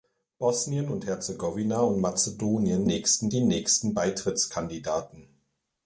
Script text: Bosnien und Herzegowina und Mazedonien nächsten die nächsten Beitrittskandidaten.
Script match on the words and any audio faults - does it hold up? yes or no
yes